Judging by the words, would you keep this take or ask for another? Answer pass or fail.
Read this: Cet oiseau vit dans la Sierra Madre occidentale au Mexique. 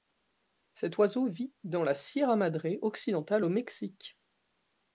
pass